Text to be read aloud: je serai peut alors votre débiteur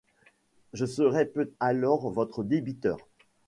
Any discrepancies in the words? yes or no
no